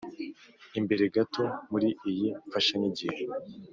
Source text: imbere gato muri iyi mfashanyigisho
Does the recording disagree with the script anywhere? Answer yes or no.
no